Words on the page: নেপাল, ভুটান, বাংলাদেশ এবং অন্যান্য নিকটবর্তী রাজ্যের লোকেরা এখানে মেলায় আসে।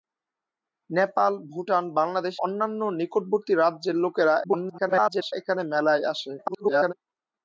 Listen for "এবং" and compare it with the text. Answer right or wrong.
wrong